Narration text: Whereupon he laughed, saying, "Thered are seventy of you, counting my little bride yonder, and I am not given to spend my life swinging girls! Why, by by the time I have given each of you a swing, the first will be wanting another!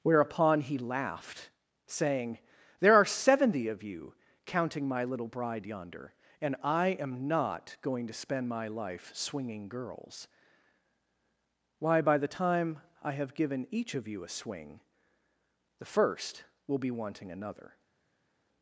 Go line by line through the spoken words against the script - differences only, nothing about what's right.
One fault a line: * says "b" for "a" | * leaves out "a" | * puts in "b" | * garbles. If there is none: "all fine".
* says "There" for "Thered"
* says "going" for "given"
* leaves out "by"